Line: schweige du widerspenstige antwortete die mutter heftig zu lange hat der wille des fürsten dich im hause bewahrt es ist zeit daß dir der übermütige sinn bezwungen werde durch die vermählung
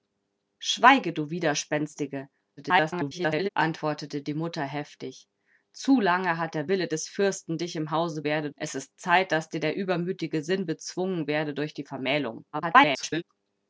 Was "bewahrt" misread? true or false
true